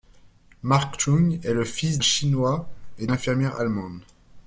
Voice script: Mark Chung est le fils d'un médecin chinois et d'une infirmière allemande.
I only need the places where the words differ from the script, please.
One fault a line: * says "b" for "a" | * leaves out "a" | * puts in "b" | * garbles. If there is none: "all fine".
* leaves out "d'un médecin"
* leaves out "d'une"